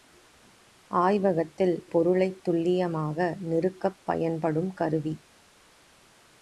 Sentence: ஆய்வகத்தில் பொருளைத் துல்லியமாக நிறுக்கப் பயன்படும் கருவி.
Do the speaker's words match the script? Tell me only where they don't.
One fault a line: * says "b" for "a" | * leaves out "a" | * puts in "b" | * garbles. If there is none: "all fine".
all fine